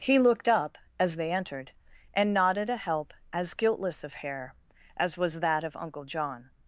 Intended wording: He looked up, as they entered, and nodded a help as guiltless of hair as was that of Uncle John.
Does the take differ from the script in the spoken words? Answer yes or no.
no